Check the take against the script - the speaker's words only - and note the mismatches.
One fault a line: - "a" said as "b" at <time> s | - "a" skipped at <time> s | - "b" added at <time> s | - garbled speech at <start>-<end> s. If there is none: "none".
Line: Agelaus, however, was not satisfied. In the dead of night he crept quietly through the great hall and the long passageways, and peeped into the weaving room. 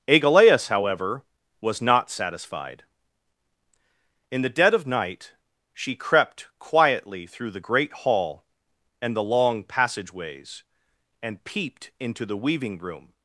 - "he" said as "she" at 5.7 s